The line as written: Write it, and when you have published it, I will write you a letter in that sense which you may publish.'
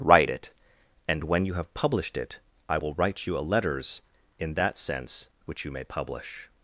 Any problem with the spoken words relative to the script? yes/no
yes